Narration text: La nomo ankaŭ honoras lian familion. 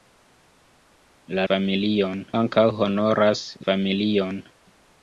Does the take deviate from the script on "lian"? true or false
true